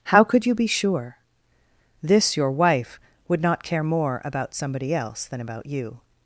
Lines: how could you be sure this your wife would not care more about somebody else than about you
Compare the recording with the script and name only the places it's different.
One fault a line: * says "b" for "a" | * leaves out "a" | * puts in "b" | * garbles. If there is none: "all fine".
all fine